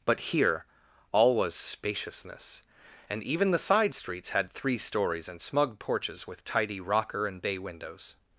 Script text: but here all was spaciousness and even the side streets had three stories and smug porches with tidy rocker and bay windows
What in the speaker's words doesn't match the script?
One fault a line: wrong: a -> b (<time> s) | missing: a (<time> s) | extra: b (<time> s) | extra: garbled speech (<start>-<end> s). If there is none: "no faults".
no faults